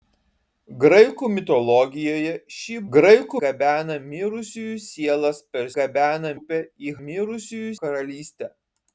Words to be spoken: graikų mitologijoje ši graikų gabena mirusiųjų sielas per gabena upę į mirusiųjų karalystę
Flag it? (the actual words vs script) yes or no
no